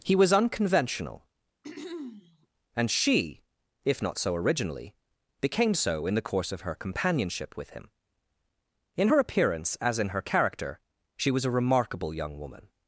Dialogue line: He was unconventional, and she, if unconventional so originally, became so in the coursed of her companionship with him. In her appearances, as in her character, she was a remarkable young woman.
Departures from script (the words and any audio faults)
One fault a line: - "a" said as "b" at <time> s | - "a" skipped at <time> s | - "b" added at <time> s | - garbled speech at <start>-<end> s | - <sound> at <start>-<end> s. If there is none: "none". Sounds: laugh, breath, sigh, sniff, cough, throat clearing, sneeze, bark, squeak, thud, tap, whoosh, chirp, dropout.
- throat clearing at 1.6-2.5 s
- "unconventional" said as "not" at 4.0 s
- "coursed" said as "course" at 6.2 s
- "appearances" said as "appearance" at 9.2 s